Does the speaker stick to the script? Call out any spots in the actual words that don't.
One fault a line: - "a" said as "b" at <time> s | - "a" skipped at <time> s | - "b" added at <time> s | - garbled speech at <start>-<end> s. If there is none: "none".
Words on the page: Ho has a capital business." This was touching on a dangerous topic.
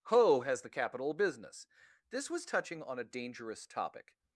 - "a" said as "the" at 0.6 s